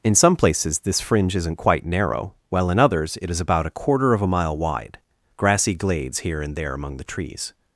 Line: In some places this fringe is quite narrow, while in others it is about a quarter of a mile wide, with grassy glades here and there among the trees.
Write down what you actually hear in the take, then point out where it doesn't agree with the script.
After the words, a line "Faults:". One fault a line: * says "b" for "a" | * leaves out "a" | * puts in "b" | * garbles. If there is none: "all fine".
In some places this fringe isn't quite narrow, while in others it is about a quarter of a mile wide, grassy glades here and there among the trees.
Faults:
* says "isn't" for "is"
* leaves out "with"